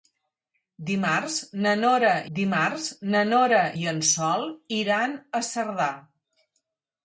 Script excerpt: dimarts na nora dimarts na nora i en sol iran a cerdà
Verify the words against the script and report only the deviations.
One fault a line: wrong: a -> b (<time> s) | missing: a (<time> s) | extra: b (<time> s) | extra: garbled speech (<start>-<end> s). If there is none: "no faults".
no faults